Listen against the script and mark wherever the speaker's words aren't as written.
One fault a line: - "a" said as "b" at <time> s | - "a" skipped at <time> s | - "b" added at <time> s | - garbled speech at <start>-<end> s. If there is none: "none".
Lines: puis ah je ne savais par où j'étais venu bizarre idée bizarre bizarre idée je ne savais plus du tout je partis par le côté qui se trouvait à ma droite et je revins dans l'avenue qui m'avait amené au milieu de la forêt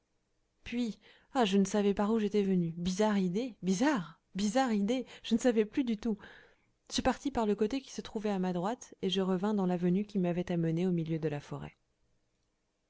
none